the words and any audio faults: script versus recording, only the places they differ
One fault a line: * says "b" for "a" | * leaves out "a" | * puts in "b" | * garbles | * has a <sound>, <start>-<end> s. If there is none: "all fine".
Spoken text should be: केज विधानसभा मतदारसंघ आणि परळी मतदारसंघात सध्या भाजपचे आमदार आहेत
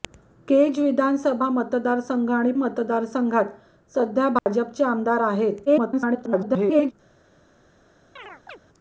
* leaves out "परळी"
* has a dropout, 4.4-4.5 s
* garbles
* has a chirp, 8.2-8.6 s